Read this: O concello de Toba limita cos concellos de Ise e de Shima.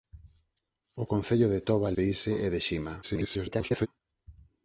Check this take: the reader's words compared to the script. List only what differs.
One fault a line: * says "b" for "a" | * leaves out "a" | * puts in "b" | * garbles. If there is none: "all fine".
* leaves out "limita cos concellos"
* garbles